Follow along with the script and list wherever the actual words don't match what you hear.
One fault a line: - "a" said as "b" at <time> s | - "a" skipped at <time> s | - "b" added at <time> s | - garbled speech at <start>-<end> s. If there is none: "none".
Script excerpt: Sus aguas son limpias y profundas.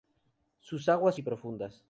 - "son limpias" skipped at 1.1 s